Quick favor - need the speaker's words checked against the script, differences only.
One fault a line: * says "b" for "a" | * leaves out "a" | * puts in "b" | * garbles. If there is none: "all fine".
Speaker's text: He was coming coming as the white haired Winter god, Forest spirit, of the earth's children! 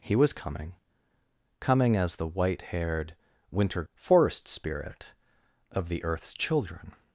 * leaves out "god"